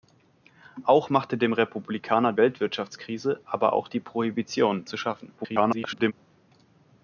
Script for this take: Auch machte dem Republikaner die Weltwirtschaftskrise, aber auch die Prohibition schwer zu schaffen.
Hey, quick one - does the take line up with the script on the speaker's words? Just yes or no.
no